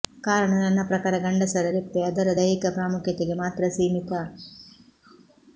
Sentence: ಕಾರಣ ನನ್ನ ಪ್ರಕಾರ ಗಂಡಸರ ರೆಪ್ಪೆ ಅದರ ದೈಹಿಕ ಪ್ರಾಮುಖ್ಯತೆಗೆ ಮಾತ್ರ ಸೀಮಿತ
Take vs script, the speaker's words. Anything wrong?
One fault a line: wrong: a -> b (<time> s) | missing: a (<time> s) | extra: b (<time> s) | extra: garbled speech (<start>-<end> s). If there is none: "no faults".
no faults